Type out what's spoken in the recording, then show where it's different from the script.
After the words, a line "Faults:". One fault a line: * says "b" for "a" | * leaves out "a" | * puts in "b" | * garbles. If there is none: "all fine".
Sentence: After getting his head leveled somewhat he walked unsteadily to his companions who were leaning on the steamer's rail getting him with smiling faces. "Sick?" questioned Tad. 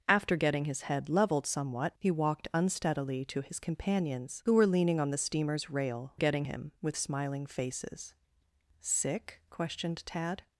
After getting his head leveled somewhat he walked unsteadily to his companions who were leaning on the steamer's rail getting him with smiling faces. "Sick?" questioned Tad.
Faults:
all fine